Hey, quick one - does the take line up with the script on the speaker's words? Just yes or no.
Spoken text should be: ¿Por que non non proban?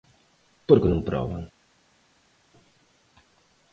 no